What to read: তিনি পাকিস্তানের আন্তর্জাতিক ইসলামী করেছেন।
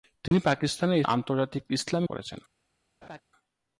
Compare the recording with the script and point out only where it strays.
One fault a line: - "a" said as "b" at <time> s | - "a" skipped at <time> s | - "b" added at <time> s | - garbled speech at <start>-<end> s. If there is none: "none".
none